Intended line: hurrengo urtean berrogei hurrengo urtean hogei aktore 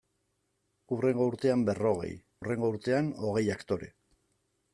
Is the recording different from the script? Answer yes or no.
no